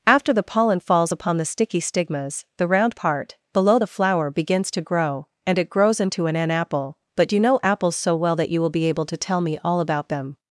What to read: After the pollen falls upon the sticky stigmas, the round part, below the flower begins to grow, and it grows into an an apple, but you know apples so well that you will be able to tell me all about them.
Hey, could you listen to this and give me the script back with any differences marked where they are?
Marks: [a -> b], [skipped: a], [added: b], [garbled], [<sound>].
After the pollen falls upon the sticky stigmas, the round part, below the flower begins to grow, and it grows into an an apple, but you know apples so well that you will be able to tell me all about them.